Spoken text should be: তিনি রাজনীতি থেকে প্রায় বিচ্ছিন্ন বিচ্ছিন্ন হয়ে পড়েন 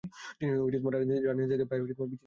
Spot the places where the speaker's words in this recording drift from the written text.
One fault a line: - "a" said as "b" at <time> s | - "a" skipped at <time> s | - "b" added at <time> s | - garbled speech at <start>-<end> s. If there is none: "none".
- "বিচ্ছিন্ন" skipped at 2.0 s